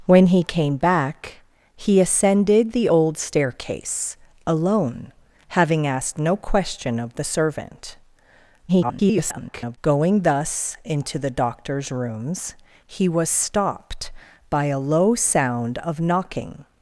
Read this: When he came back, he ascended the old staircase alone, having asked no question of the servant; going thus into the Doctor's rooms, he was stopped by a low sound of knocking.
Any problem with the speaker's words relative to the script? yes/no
yes